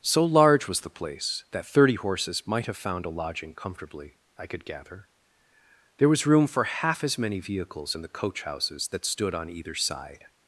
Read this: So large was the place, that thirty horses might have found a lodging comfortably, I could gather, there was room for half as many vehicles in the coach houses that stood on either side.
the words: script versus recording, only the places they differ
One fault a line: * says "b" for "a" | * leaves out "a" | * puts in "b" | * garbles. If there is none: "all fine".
all fine